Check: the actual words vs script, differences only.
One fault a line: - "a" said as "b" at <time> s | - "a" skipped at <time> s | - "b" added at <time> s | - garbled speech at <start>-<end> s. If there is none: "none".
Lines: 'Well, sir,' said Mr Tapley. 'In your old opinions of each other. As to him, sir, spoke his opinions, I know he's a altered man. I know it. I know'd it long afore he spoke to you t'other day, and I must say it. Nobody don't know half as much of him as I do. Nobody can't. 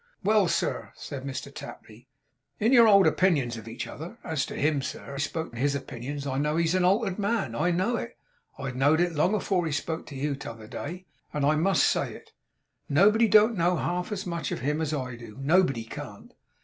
none